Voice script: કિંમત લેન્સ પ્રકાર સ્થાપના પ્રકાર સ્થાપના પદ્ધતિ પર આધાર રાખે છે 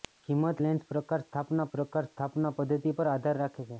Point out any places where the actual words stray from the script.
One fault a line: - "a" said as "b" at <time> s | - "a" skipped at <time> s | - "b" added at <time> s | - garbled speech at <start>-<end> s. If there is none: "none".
none